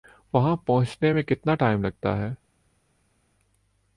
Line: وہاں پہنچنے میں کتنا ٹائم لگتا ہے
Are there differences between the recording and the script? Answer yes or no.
no